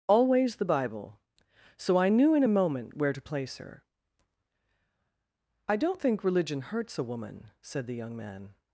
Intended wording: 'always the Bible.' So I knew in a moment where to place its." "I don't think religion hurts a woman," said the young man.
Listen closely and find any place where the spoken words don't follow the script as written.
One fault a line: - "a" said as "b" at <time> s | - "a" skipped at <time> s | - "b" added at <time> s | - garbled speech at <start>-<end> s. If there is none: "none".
- "its" said as "her" at 3.6 s